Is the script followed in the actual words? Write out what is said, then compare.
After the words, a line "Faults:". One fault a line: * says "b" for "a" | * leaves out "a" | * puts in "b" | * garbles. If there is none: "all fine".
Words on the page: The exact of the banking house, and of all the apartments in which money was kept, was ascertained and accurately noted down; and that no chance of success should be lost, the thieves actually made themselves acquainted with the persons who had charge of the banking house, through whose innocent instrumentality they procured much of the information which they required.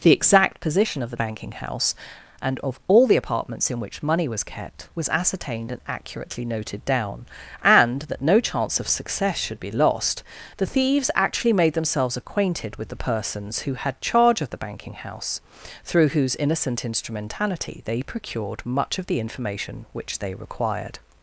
The exact position of the banking house, and of all the apartments in which money was kept, was ascertained and accurately noted down; and that no chance of success should be lost, the thieves actually made themselves acquainted with the persons who had charge of the banking house, through whose innocent instrumentality they procured much of the information which they required.
Faults:
* puts in "position"